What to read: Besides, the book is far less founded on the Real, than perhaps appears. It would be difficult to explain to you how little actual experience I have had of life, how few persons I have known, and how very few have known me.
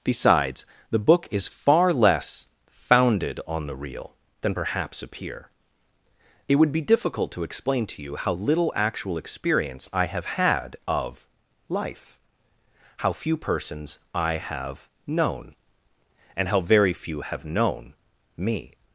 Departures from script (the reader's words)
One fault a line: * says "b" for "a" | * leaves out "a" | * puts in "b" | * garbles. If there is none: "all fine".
* says "appear" for "appears"